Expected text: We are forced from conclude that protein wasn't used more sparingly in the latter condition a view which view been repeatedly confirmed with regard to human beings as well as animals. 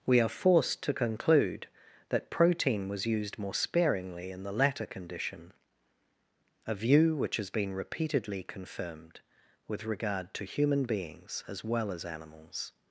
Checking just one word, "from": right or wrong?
wrong